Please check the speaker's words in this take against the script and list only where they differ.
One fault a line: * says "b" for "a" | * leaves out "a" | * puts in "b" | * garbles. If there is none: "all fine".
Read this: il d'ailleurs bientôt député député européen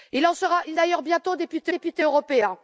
all fine